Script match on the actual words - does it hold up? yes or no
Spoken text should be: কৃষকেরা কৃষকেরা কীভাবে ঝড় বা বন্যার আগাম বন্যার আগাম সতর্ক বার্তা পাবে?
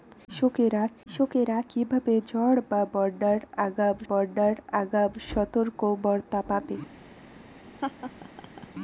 yes